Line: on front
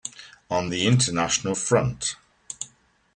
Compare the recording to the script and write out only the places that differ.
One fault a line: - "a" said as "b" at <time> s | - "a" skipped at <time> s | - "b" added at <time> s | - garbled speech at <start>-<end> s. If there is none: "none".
- "the international" added at 0.7 s